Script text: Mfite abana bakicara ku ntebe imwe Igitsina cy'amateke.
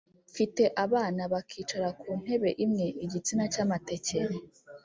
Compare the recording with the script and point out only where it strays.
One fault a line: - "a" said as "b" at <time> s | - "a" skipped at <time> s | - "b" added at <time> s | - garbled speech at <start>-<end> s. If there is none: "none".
none